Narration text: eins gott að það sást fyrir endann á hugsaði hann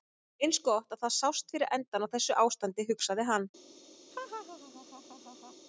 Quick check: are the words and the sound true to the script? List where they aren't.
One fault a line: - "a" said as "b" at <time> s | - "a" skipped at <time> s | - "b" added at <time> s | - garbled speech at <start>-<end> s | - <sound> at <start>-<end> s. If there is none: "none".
- "þessu ástandi" added at 2.1 s
- laugh at 4.1-5.6 s